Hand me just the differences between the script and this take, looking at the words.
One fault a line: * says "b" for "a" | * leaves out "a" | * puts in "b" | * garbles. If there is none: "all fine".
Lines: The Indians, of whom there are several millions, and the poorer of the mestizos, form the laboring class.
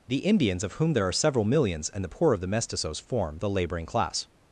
* says "poor" for "poorer"